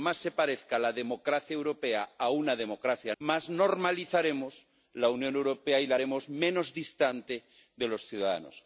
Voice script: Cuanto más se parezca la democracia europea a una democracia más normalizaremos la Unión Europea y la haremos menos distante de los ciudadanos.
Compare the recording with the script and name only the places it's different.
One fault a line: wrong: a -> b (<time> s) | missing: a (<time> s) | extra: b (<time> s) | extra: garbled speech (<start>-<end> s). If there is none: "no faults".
no faults